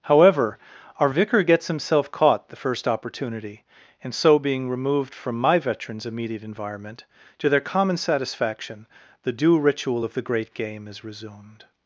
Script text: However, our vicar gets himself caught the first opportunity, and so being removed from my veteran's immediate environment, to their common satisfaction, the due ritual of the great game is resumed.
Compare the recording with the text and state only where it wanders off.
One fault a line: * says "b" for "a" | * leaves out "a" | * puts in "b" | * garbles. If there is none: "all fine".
all fine